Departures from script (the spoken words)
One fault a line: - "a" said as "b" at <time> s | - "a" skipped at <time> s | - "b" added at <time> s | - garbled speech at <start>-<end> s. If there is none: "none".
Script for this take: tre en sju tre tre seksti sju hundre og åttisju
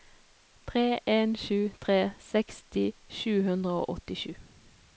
- "tre" skipped at 2.0 s